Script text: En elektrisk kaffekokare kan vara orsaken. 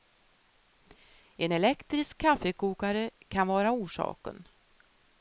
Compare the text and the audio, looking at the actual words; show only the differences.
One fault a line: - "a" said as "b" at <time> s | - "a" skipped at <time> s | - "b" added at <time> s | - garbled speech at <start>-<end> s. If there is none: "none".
none